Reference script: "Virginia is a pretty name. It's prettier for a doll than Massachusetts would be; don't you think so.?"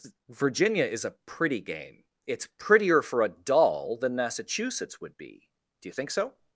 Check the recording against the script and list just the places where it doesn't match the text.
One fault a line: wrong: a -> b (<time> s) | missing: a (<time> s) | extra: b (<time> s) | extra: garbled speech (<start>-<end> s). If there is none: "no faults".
wrong: name -> game (1.6 s)
wrong: don't -> do (5.8 s)